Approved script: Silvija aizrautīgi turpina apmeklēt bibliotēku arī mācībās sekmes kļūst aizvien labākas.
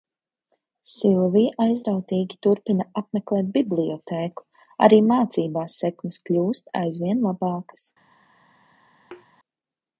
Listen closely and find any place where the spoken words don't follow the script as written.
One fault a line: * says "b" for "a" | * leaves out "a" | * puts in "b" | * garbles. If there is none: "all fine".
all fine